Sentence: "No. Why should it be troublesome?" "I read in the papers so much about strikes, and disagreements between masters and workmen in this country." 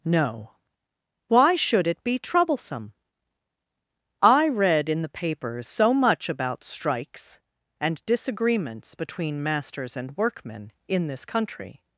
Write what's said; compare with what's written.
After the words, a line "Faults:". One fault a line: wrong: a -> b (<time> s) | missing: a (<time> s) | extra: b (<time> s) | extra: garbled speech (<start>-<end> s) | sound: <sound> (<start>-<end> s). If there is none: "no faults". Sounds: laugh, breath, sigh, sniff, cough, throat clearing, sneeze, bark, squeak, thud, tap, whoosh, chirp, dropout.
"No. Why should it be troublesome?" "I read in the papers so much about strikes, and disagreements between masters and workmen in this country."
Faults:
no faults